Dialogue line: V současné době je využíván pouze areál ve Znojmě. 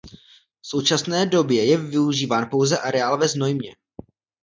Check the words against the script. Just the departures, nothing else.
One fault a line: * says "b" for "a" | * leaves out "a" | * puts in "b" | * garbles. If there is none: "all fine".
all fine